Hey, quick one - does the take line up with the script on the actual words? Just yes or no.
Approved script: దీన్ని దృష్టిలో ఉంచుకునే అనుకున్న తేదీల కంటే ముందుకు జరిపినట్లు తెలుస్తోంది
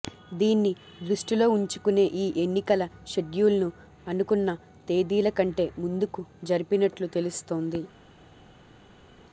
no